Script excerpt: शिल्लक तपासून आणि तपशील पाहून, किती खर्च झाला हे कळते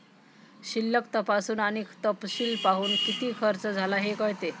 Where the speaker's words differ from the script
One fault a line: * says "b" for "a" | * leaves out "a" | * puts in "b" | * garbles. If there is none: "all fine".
all fine